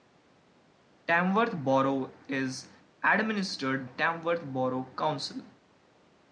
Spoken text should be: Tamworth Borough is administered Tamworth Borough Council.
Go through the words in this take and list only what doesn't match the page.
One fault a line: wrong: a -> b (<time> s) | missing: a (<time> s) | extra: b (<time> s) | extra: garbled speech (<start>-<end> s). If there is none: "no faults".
no faults